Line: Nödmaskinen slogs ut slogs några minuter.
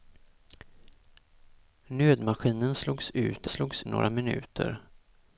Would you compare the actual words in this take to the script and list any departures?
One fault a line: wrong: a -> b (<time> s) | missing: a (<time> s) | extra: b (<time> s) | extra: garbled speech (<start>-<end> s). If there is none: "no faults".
no faults